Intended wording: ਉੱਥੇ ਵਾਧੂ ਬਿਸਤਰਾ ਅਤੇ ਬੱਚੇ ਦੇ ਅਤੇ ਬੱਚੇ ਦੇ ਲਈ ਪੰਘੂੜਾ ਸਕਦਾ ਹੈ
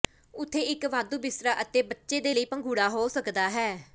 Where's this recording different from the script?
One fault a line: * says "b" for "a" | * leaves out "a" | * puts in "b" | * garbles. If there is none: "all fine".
* puts in "ਇੱਕ"
* leaves out "ਅਤੇ ਬੱਚੇ ਦੇ"
* puts in "ਹੋ"